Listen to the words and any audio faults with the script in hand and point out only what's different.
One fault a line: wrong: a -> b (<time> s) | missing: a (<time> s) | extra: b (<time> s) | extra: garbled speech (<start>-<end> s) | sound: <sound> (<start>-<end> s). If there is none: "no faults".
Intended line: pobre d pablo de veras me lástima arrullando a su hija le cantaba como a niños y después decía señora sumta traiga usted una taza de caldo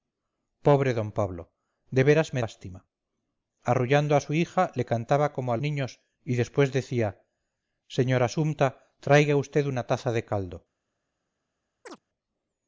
sound: chirp (11.9-12.0 s)